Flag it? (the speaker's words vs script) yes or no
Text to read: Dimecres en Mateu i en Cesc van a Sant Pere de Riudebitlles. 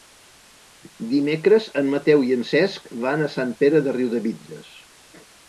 no